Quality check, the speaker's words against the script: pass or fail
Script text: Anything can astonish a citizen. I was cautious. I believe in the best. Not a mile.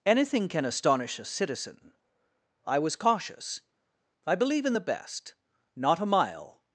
pass